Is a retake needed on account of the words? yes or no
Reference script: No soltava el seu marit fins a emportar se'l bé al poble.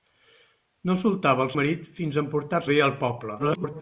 yes